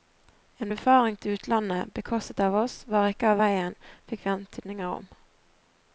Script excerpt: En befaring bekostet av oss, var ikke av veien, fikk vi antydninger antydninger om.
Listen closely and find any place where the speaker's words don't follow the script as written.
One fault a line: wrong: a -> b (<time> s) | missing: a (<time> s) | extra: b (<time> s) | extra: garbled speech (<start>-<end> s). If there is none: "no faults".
extra: til utlandet (1.2 s)
missing: antydninger (4.9 s)